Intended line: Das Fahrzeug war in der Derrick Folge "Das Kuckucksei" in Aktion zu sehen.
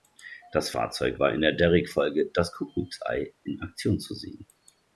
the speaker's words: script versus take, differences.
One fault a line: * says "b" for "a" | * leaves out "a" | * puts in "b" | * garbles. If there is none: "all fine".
all fine